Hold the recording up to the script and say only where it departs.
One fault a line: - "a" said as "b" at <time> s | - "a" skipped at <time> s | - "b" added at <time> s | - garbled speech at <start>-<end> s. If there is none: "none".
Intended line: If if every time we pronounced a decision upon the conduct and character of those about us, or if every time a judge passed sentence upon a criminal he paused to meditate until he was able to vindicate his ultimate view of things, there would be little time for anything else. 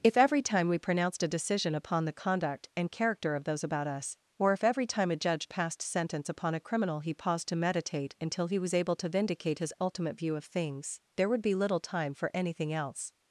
- "if" skipped at 0.2 s